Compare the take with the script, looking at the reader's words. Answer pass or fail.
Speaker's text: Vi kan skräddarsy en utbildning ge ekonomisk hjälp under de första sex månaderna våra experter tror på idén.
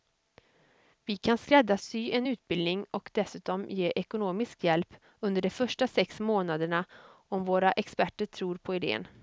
fail